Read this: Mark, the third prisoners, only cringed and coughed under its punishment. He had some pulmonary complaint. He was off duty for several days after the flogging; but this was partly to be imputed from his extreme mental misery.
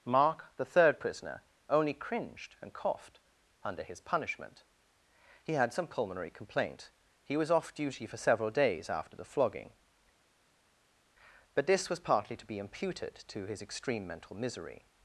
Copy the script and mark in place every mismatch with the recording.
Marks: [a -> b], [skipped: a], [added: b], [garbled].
Mark, the third [prisoners, -> prisoner] only cringed and coughed under [its -> his] punishment. He had some pulmonary complaint. He was off duty for several days after the flogging; but this was partly to be imputed [from -> to] his extreme mental misery.